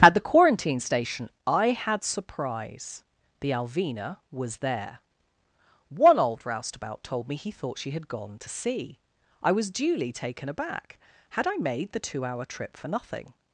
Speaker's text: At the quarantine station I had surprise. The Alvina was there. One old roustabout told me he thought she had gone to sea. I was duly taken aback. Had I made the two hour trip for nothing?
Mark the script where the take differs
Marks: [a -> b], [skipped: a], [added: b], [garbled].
At the quarantine station I had surprise. The Alvina was there. One old roustabout told me he thought she had gone to sea. I was duly taken aback. Had I made the two hour trip for nothing?